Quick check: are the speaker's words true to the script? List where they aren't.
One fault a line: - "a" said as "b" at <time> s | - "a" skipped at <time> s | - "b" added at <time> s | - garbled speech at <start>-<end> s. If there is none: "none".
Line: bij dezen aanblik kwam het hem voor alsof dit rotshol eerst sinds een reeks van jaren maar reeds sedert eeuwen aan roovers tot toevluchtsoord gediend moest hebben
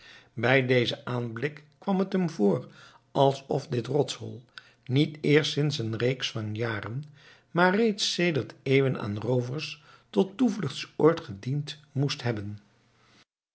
- "niet" added at 4.8 s